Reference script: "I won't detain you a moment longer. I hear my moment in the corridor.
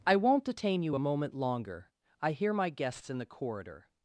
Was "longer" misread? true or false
false